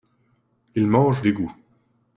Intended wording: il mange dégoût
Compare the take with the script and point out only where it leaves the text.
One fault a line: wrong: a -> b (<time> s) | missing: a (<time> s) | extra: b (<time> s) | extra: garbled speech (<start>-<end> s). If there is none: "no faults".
no faults